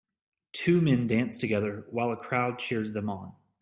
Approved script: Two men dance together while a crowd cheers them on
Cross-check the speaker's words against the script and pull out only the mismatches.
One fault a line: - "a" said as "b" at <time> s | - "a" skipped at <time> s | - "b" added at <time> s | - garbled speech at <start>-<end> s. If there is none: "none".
none